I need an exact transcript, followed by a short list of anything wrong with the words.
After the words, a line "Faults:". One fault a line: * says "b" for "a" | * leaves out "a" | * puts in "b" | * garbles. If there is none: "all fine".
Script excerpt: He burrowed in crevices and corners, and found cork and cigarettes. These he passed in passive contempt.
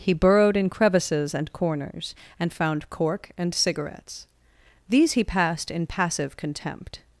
He burrowed in crevices and corners, and found cork and cigarettes. These he passed in passive contempt.
Faults:
all fine